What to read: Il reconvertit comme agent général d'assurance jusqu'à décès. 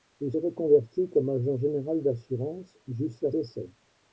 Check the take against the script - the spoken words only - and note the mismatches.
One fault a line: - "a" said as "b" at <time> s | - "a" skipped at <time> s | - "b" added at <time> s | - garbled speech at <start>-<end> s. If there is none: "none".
none